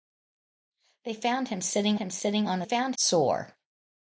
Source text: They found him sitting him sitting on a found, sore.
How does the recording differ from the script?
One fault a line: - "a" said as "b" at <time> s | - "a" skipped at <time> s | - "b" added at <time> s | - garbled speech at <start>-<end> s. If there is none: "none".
none